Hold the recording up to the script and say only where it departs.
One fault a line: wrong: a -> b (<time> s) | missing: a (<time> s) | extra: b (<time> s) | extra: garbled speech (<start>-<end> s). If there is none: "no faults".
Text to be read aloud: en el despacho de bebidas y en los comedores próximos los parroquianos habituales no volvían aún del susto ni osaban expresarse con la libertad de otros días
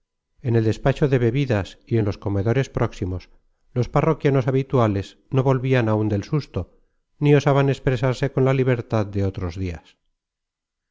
no faults